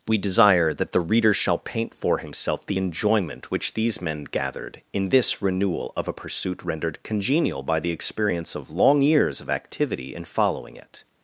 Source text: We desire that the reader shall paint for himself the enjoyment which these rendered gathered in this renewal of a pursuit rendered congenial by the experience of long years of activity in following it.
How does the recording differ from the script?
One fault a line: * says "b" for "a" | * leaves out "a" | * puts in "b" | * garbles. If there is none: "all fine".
* says "men" for "rendered"